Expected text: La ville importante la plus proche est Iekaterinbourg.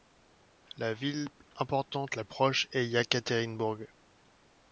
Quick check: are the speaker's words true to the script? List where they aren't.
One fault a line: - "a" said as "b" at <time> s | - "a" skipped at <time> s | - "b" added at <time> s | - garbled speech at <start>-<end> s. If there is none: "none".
- "plus" skipped at 2.2 s